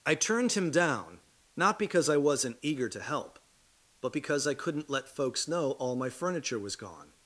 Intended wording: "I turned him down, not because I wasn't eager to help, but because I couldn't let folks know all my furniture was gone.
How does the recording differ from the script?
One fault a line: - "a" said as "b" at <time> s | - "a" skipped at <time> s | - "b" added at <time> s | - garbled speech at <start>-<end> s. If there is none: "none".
none